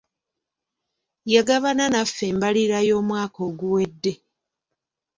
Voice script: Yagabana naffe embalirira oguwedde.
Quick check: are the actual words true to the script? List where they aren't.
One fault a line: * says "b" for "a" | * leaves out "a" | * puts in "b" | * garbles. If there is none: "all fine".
* puts in "y'omwaka"